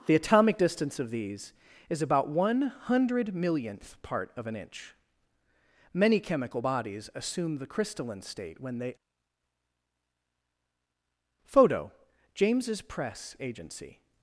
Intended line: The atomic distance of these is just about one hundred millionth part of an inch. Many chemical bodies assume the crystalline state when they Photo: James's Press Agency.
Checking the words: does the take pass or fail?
fail